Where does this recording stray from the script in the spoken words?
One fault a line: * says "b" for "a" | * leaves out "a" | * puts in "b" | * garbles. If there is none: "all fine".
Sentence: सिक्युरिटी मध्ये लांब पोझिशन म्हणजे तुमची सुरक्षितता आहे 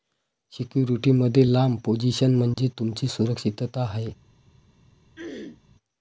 all fine